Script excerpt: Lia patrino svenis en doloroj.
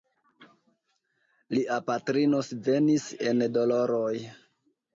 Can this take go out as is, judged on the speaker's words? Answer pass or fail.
pass